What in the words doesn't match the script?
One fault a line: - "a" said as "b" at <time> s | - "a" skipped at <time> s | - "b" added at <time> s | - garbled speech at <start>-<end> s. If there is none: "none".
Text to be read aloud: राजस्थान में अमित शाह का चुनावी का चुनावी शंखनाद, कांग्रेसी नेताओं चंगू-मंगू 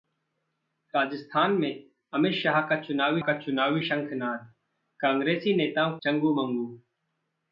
none